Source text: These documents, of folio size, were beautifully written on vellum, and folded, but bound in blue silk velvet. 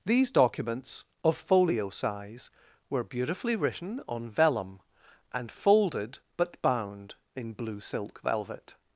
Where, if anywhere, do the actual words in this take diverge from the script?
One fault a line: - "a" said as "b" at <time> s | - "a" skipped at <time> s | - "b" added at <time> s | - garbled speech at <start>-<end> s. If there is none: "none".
none